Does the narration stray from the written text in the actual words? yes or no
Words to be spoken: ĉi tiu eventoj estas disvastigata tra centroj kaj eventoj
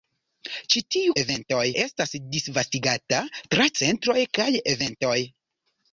no